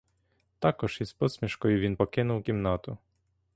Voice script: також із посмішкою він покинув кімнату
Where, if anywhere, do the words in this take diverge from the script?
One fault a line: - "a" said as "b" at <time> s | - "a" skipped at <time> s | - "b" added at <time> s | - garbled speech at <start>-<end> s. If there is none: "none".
none